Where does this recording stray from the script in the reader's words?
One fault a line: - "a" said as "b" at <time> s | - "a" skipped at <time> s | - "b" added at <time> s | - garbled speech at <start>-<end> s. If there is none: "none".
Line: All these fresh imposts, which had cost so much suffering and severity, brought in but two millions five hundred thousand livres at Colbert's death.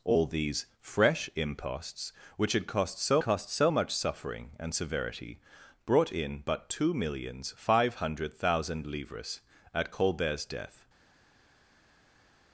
- "cost so" added at 3.2 s